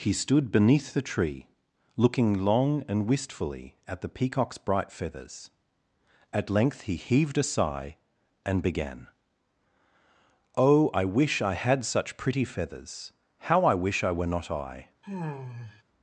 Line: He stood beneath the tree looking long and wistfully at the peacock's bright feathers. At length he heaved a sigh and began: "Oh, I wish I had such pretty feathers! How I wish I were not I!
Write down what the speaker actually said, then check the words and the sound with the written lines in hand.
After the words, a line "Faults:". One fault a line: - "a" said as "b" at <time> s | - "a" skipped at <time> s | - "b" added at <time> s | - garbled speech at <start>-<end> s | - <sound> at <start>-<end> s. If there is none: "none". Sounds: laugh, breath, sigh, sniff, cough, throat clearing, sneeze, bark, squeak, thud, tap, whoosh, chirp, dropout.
He stood beneath the tree looking long and wistfully at the peacock's bright feathers. At length he heaved a sigh and began: "Oh, I wish I had such pretty feathers! How I wish I were not I!
Faults:
- sigh at 15.0-15.8 s